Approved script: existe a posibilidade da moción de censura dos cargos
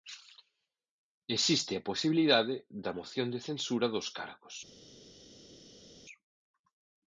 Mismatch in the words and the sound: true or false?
false